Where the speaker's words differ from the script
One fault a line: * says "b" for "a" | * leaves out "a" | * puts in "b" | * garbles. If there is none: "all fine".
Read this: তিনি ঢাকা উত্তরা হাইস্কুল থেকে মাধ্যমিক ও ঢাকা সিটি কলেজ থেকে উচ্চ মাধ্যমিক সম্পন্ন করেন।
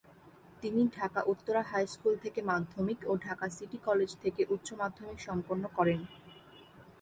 all fine